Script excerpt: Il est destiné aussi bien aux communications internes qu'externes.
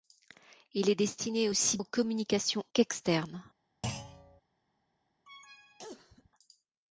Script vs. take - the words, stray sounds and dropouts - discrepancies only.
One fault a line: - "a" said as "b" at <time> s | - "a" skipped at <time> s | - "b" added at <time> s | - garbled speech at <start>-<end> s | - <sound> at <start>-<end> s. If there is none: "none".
- "bien" skipped at 1.8 s
- "internes" skipped at 2.6 s
- thud at 3.8-4.4 s
- cough at 5.3-6.3 s